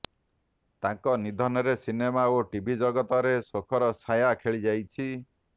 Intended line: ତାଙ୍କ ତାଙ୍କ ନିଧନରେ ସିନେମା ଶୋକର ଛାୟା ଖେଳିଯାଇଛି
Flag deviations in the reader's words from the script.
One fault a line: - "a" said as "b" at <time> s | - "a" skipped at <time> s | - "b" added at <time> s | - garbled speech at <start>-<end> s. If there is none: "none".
- "ତାଙ୍କ" skipped at 1.1 s
- "ଓ ଟିଭି ଜଗତରେ" added at 2.3 s